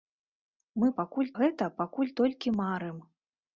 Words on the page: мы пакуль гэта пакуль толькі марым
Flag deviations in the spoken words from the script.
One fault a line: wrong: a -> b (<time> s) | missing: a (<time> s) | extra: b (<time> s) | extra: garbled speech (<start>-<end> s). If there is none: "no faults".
no faults